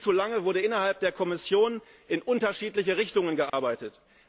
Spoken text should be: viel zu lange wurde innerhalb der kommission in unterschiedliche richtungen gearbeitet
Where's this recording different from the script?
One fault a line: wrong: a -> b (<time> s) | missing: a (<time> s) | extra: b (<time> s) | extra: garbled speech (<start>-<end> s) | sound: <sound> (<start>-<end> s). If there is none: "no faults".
sound: dropout (3.5-3.5 s)